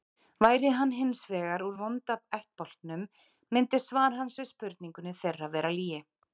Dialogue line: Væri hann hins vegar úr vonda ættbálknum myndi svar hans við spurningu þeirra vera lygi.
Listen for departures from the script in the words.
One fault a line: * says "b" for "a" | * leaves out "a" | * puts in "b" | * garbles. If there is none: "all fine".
all fine